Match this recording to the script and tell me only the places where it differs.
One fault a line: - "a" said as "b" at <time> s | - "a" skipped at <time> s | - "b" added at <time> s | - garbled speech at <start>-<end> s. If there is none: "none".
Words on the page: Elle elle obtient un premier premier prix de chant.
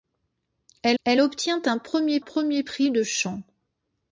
none